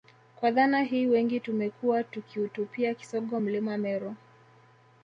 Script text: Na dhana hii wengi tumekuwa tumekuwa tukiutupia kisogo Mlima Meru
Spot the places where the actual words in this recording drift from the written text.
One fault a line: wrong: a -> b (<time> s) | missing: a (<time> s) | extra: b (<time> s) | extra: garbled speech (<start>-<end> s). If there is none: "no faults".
wrong: Na -> Kwa (0.3 s)
missing: tumekuwa (2.0 s)